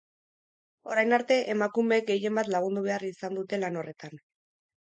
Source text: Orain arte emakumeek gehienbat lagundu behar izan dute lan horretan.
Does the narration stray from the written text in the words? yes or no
no